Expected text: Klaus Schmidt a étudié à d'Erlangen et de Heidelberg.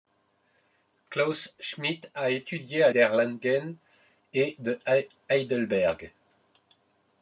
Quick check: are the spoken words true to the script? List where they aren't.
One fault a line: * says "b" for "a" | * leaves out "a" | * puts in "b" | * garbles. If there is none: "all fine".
all fine